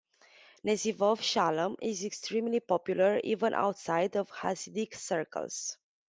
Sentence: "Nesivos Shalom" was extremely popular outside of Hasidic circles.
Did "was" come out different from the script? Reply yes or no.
yes